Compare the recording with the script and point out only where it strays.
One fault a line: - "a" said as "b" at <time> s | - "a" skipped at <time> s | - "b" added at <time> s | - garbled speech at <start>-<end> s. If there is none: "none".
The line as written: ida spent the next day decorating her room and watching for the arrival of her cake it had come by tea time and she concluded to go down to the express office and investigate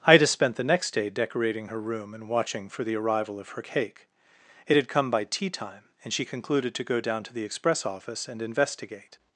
none